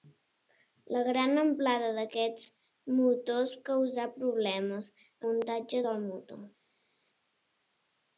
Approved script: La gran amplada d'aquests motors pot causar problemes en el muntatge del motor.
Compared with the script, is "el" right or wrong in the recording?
wrong